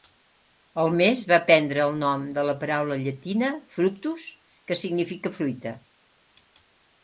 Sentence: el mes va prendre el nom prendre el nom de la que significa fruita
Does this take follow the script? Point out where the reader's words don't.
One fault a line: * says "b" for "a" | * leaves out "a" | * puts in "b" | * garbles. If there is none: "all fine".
* says "de la paraula llatina fructus" for "prendre el nom de la"